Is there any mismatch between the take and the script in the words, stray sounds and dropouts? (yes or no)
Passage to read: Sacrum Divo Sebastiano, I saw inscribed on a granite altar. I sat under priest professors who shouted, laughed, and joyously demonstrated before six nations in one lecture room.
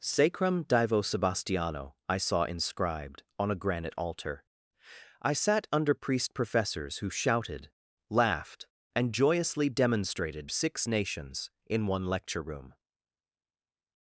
yes